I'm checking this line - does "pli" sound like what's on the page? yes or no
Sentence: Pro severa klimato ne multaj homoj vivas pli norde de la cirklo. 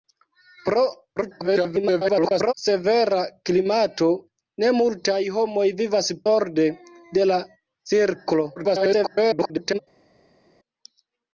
no